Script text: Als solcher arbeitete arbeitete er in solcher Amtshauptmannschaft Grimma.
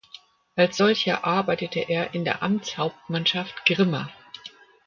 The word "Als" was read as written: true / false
true